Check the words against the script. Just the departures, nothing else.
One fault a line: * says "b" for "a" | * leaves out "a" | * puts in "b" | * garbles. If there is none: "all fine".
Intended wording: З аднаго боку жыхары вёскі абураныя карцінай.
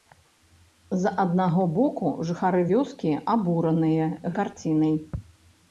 all fine